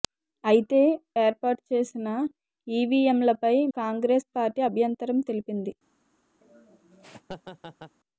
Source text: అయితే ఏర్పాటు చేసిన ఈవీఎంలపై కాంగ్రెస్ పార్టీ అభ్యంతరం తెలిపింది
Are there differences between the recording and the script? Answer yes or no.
no